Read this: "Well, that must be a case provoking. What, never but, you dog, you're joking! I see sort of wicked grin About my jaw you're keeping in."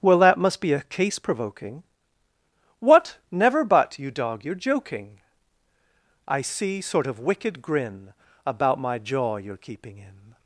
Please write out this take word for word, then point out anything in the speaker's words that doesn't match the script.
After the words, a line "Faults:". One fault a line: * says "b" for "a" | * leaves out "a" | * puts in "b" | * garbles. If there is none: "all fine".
"Well, that must be a case provoking. What, never but, you dog, you're joking! I see sort of wicked grin About my jaw you're keeping in."
Faults:
all fine